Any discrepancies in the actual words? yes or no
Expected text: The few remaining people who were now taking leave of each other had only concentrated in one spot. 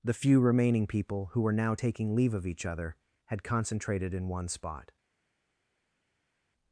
yes